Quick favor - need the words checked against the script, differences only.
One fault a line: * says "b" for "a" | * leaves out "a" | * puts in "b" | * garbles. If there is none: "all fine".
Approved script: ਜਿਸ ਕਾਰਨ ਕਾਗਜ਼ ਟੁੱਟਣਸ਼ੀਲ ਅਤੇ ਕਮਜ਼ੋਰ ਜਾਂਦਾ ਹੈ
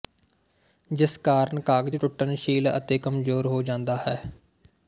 * puts in "ਹੋ"